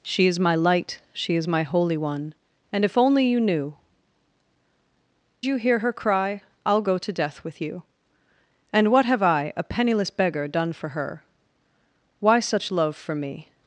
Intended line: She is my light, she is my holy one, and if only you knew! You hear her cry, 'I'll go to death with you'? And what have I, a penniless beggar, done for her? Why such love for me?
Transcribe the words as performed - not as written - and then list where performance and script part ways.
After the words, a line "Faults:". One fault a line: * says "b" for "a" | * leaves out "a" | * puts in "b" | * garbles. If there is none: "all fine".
She is my light, she is my holy one, and if only you knew! You hear her cry, 'I'll go to death with you'? And what have I, a penniless beggar, done for her? Why such love for me?
Faults:
all fine